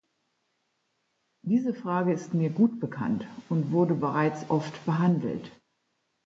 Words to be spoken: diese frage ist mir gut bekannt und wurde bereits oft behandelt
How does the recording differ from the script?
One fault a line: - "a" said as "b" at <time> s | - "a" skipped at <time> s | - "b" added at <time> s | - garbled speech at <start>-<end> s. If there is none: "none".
none